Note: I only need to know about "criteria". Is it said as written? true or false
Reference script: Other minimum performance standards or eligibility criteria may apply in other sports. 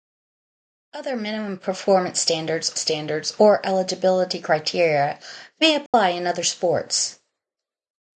true